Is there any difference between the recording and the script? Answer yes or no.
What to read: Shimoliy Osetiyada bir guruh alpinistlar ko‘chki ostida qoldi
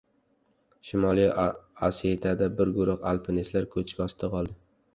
no